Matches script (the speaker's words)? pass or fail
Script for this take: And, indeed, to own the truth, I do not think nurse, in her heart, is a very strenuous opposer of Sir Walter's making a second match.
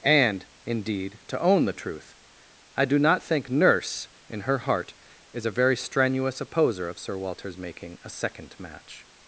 pass